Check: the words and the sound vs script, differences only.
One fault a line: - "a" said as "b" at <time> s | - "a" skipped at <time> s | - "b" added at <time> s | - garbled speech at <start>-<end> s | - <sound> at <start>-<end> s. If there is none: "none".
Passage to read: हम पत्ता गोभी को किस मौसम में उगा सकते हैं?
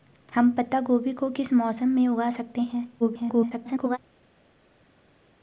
- garbled speech at 3.0-4.0 s